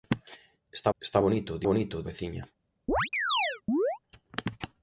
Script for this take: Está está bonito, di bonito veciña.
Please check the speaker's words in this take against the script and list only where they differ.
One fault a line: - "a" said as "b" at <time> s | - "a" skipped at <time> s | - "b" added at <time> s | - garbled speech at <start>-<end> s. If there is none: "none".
none